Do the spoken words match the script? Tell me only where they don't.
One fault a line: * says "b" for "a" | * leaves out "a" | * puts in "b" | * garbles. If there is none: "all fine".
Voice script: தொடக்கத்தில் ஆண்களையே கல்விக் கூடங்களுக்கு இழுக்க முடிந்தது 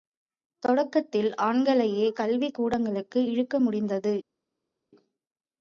all fine